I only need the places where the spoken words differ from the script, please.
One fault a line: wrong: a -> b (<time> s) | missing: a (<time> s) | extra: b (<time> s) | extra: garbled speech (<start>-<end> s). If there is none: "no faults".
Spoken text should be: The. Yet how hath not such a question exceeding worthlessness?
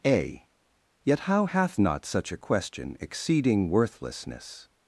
wrong: The -> A (0.1 s)